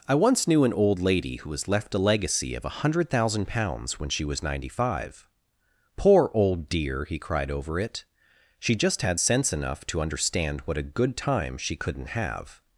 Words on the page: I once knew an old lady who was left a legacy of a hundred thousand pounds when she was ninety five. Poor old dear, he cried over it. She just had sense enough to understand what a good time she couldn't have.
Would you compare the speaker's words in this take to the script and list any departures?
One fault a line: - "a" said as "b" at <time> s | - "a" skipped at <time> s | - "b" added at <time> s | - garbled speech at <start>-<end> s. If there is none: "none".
none